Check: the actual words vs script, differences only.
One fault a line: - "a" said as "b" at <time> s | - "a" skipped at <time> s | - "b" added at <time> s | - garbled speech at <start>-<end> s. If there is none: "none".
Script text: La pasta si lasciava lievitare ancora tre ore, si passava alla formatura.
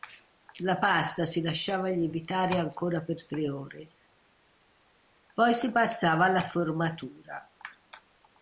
- "per" added at 3.0 s
- "poi" added at 5.3 s